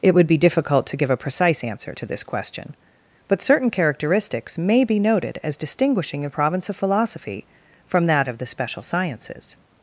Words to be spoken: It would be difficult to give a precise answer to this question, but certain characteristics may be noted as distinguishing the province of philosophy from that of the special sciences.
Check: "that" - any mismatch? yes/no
no